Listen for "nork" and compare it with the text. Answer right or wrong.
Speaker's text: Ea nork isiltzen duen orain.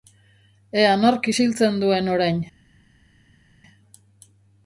right